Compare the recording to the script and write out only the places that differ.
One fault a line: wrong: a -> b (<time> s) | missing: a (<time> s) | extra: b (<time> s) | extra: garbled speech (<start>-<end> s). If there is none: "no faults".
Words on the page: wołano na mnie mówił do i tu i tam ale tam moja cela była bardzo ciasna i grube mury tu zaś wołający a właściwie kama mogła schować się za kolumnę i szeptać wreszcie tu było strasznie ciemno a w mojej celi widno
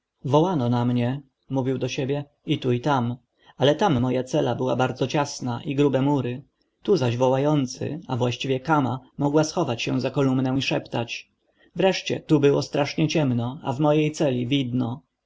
extra: siebie (1.9 s)